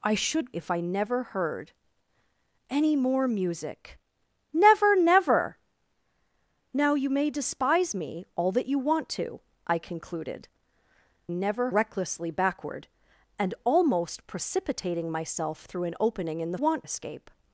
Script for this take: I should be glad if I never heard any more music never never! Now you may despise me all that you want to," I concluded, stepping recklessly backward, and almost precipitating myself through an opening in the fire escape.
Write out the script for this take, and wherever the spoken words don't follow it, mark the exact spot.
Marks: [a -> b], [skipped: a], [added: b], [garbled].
I should [skipped: be glad] if I never heard any more music never never! Now you may despise me all that you want to," I concluded, [stepping -> never] recklessly backward, and almost precipitating myself through an opening in the [fire -> want] escape.